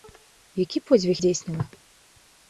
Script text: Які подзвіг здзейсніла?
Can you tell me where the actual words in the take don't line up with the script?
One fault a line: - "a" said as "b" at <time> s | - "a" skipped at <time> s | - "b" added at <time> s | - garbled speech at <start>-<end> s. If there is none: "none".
none